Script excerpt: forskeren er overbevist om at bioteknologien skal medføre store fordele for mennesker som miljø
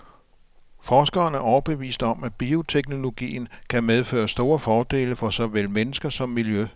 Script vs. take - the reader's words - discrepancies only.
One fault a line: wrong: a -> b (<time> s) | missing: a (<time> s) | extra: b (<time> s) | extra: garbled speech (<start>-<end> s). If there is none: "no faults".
wrong: skal -> kan (3.7 s)
extra: såvel (5.3 s)